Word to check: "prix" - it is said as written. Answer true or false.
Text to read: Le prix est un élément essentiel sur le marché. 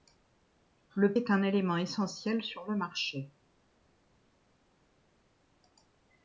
false